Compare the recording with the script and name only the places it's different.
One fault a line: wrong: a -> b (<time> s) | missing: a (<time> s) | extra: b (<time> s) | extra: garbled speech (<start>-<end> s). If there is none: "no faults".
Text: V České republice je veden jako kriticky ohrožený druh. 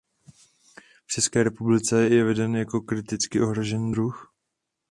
no faults